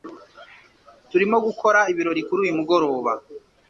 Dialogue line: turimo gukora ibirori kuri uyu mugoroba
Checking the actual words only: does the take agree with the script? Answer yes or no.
yes